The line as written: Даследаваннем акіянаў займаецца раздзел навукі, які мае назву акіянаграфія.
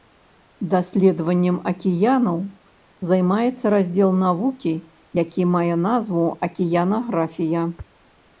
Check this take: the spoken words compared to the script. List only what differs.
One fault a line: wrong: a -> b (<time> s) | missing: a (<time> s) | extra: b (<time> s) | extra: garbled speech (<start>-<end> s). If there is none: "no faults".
no faults